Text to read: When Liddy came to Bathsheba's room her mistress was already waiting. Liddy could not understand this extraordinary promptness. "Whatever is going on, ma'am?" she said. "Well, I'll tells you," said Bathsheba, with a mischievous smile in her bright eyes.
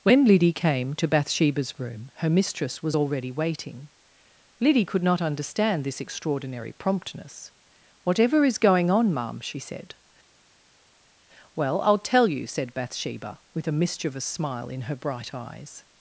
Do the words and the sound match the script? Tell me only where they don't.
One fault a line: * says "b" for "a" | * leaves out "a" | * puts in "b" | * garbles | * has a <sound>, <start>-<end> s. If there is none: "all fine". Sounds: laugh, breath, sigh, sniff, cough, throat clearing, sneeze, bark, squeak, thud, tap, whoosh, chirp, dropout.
* says "tell" for "tells"